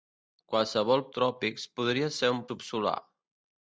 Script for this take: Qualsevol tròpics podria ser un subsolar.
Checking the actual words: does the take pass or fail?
pass